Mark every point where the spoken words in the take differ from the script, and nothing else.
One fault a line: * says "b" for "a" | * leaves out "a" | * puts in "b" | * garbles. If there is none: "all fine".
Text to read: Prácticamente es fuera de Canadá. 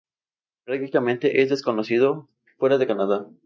* puts in "desconocido"